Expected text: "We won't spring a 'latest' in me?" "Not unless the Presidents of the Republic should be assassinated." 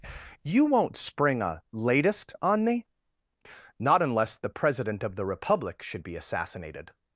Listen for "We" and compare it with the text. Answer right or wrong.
wrong